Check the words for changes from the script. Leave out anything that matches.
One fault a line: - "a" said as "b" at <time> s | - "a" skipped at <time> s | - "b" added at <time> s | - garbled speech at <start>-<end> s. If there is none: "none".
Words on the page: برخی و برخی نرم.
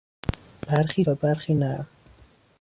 none